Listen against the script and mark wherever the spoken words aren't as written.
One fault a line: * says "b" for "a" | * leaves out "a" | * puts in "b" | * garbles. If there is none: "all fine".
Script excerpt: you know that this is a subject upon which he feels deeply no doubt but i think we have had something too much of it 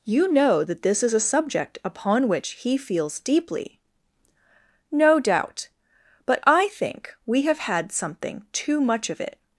all fine